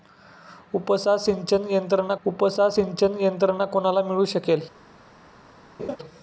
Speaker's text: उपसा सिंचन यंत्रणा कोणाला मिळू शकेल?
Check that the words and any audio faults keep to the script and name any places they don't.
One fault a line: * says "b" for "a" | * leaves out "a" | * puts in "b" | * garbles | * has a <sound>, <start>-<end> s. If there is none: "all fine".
* puts in "उपसा सिंचन यंत्रणा"
* has a laugh, 5.8-6.0 s